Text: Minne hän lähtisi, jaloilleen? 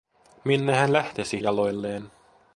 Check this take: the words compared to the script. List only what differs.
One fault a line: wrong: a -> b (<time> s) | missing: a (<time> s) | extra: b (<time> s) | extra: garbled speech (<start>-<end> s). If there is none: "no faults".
no faults